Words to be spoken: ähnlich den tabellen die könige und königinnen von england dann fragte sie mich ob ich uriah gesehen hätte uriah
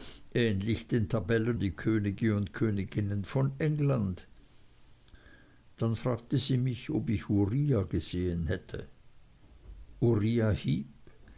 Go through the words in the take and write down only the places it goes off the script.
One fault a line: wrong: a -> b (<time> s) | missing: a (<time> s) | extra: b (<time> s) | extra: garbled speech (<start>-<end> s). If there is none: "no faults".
no faults